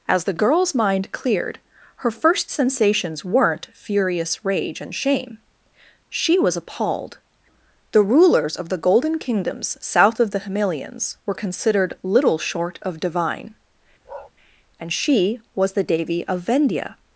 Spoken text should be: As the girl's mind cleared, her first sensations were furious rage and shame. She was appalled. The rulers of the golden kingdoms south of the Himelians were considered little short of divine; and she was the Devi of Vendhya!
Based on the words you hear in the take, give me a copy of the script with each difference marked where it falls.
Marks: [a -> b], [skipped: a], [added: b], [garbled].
As the girl's mind cleared, her first sensations [were -> weren't] furious rage and shame. She was appalled. The rulers of the golden kingdoms south of the Himelians were considered little short of divine; and she was the Devi of Vendhya!